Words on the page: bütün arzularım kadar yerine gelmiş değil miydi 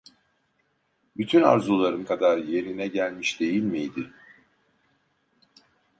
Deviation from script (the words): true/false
false